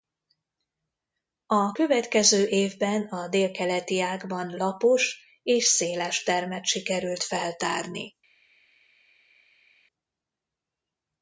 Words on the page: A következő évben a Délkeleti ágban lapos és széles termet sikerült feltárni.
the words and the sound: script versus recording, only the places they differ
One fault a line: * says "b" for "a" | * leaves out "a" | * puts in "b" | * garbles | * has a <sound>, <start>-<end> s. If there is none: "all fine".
all fine